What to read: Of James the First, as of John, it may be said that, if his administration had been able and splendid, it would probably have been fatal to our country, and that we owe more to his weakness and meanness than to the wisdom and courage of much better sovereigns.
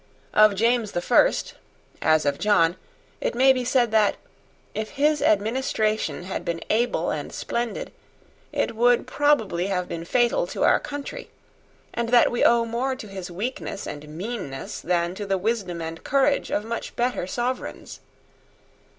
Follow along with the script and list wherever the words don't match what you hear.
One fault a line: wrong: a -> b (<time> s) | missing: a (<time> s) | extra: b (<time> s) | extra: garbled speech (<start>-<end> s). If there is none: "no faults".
no faults